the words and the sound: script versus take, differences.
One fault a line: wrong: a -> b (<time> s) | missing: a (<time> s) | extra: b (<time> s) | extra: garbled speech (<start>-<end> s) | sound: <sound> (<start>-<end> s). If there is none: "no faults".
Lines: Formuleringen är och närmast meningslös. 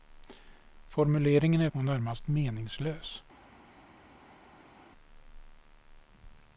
no faults